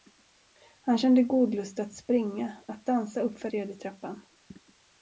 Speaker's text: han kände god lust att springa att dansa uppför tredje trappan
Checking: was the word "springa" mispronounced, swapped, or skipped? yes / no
no